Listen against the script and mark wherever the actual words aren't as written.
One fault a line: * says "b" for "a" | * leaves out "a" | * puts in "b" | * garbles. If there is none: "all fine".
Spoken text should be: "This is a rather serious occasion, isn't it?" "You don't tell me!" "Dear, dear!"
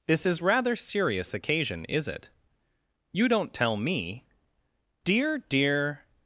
* leaves out "a"
* says "is" for "isn't"